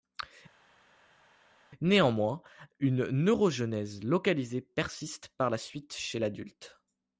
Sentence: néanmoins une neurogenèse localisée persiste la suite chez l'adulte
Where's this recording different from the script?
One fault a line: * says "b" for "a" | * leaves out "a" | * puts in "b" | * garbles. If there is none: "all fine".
* puts in "par"